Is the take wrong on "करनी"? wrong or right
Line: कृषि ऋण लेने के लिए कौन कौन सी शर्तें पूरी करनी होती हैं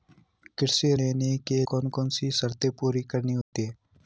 right